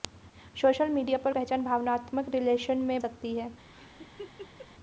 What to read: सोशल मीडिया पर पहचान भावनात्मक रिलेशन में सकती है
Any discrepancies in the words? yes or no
no